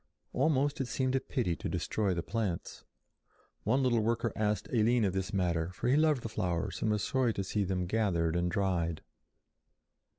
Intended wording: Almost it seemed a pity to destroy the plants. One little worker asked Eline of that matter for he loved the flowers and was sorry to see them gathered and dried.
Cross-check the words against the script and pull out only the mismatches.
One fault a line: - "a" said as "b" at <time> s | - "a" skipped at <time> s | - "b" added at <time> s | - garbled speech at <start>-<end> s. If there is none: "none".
- "that" said as "this" at 5.1 s